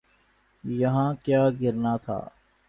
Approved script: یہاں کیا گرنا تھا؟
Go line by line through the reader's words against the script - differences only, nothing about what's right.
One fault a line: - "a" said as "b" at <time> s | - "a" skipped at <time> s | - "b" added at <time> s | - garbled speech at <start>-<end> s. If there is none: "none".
none